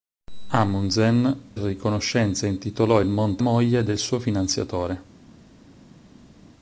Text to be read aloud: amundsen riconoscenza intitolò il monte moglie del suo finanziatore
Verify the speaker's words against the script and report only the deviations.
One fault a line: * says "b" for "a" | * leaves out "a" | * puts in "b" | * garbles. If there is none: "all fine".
all fine